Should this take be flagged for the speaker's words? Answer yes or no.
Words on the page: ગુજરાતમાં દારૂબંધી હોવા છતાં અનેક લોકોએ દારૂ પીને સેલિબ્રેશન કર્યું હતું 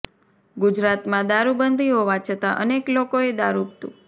yes